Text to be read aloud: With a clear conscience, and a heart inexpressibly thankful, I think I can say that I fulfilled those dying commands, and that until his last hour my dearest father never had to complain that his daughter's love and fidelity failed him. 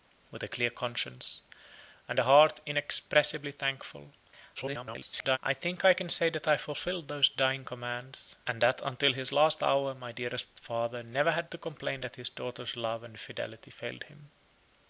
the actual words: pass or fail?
fail